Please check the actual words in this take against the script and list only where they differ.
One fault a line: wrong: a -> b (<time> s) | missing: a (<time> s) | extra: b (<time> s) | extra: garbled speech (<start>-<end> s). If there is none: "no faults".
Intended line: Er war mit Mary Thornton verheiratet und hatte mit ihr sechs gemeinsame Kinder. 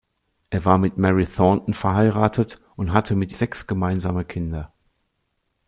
missing: ihr (3.3 s)